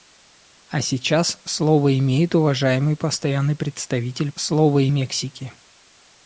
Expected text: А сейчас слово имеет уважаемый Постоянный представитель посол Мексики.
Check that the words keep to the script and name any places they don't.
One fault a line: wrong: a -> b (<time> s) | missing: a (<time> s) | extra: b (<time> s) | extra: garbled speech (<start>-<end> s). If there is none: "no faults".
wrong: посол -> слово (4.4 s)